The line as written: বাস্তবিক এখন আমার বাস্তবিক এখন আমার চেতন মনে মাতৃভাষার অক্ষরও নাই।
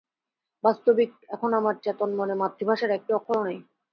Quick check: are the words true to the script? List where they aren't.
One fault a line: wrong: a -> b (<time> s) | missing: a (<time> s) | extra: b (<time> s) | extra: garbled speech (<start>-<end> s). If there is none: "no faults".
missing: বাস্তবিক এখন আমার (1.7 s)
extra: একটি (2.9 s)